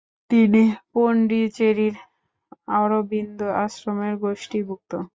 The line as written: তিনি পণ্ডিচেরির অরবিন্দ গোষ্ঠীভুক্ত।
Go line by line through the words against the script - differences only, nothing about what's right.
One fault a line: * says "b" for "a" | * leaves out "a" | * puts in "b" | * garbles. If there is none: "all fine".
* puts in "আশ্রমের"